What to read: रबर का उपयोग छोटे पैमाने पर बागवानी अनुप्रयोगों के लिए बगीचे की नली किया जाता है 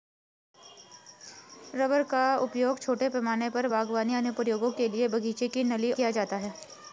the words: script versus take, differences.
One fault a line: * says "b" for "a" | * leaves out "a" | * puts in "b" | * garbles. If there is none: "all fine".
all fine